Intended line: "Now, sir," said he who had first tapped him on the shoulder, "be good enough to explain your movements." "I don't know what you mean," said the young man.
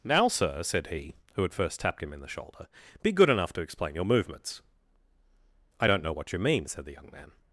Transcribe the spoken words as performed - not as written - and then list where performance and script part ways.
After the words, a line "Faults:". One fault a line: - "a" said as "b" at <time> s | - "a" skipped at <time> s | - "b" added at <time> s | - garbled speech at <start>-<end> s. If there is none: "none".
"Now, sir," said he who had first tapped him in the shoulder, "be good enough to explain your movements." "I don't know what you mean," said the young man.
Faults:
- "on" said as "in" at 2.1 s